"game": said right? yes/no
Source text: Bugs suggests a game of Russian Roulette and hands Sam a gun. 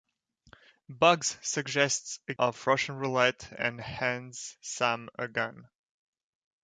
no